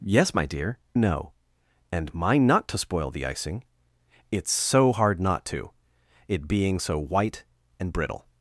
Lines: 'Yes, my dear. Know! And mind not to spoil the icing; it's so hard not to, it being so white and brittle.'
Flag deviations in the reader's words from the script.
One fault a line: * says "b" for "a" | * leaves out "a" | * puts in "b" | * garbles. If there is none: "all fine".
all fine